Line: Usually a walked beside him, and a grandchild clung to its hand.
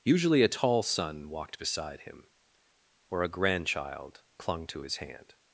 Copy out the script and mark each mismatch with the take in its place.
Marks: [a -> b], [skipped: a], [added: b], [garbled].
Usually a [added: tall son] walked beside him, [and -> or] a grandchild clung to [its -> his] hand.